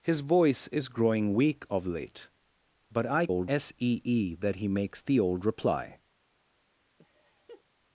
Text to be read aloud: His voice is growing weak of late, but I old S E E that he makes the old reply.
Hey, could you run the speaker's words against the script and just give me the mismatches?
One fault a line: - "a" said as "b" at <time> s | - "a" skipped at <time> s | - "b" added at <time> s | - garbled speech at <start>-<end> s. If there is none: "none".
none